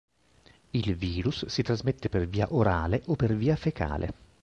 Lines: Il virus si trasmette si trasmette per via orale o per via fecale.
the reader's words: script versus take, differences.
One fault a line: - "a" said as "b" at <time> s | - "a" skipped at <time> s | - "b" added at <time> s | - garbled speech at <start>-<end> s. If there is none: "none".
- "si trasmette" skipped at 2.1 s